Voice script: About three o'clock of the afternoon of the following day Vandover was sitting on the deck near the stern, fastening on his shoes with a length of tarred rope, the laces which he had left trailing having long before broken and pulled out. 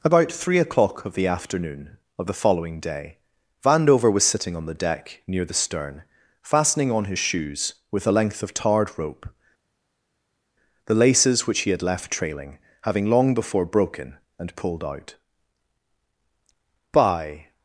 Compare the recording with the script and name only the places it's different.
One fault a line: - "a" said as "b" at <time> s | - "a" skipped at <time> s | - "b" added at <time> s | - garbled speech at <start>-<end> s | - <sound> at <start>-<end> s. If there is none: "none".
- "By" added at 16.9 s